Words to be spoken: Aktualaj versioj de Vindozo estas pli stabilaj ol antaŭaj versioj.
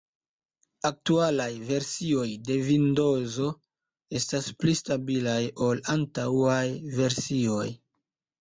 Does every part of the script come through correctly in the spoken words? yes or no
yes